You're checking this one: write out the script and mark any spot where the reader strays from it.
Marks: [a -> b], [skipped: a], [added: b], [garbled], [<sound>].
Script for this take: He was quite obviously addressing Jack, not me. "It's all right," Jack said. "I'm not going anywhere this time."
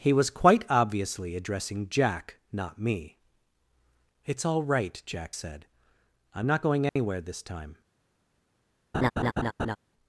He was quite obviously addressing Jack, not me. "It's all right," Jack said. "I'm not going anywhere [dropout] this time." [laugh]